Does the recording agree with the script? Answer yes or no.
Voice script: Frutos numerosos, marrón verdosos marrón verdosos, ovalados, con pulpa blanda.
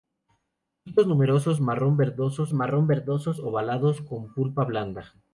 yes